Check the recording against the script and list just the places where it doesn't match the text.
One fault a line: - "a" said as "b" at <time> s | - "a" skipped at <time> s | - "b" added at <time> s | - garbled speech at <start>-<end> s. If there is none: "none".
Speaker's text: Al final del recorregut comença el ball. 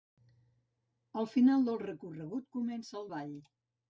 none